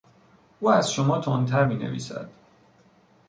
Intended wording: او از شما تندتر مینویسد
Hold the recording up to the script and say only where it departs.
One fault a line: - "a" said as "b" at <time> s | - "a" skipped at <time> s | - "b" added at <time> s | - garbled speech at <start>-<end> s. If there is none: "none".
none